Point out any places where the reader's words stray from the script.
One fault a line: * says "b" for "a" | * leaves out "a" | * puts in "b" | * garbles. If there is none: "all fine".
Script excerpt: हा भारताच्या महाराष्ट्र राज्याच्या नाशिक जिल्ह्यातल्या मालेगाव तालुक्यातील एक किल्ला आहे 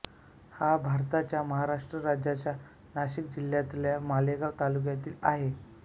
* leaves out "एक किल्ला"